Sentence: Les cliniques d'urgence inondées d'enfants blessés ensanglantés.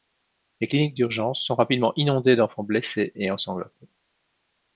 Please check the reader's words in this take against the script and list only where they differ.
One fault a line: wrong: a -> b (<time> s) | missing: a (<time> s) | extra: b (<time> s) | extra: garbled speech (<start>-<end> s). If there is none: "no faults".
extra: sont rapidement (1.4 s)
extra: et (3.2 s)